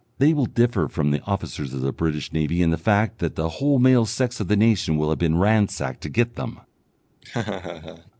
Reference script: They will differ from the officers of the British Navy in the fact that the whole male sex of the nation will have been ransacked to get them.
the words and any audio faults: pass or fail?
fail